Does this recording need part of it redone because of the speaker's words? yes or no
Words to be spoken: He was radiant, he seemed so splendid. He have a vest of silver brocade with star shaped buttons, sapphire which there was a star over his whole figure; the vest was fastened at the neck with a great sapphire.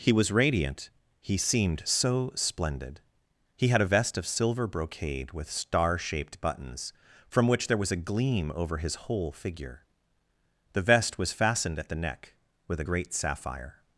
yes